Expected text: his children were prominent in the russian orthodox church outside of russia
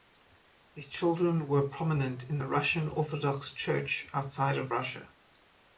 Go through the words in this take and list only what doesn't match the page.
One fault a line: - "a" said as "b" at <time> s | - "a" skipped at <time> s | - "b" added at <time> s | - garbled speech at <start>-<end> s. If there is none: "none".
none